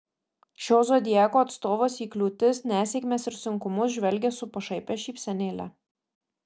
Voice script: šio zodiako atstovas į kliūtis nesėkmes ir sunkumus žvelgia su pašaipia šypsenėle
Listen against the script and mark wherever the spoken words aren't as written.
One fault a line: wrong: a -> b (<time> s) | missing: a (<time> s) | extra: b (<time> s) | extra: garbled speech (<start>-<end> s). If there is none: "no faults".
no faults